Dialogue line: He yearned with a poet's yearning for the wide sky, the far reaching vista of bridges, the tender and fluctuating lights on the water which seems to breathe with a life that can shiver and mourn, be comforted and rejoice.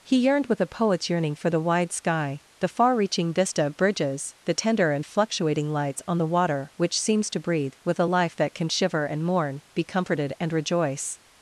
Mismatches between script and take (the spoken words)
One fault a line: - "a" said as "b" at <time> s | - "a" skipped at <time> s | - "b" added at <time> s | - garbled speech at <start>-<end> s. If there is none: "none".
none